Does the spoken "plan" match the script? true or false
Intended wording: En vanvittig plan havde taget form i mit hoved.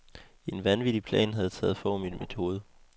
true